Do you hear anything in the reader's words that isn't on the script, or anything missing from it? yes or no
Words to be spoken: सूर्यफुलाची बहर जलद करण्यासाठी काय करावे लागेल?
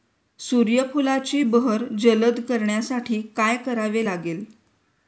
no